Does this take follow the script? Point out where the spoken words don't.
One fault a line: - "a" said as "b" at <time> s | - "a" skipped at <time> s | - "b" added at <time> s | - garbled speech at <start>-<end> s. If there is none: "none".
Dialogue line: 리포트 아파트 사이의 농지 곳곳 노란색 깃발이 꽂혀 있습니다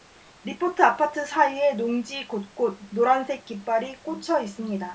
none